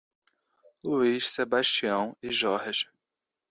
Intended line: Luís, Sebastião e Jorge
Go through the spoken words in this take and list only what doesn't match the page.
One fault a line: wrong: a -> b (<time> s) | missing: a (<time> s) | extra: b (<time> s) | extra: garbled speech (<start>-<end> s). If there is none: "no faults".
no faults